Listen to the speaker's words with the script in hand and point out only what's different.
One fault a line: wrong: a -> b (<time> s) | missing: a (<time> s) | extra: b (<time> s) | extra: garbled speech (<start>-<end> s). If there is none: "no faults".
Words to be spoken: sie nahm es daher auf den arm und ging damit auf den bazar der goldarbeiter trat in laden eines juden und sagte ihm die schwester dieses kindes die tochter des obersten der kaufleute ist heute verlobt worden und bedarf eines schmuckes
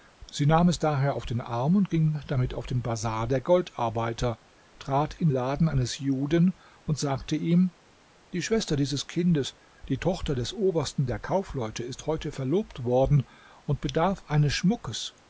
no faults